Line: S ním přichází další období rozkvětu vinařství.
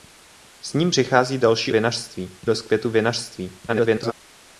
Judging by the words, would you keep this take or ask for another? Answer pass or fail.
fail